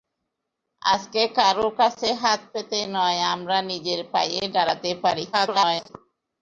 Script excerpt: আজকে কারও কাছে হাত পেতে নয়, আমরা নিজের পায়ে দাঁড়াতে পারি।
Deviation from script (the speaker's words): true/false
true